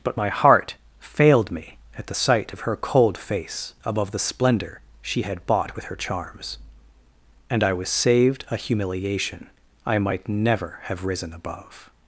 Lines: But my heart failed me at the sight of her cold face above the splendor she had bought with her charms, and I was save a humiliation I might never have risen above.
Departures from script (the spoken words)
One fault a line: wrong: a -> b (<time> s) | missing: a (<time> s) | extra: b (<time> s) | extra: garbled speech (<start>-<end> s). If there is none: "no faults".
wrong: save -> saved (7.9 s)